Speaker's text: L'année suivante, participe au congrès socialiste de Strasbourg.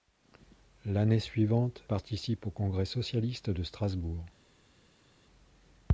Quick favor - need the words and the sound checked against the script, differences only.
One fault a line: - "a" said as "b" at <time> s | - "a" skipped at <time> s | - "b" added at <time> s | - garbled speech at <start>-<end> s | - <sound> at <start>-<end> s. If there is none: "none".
none